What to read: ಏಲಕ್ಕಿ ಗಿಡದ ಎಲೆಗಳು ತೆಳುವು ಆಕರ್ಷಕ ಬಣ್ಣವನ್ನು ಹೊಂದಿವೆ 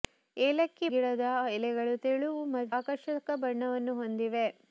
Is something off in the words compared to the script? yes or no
no